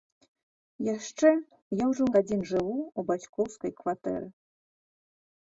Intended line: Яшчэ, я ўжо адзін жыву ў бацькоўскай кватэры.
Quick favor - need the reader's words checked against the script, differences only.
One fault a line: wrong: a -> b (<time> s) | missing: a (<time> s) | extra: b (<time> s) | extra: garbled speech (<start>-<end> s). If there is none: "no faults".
no faults